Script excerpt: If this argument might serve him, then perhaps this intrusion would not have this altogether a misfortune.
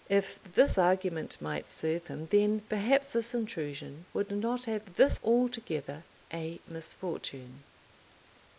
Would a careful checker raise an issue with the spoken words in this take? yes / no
no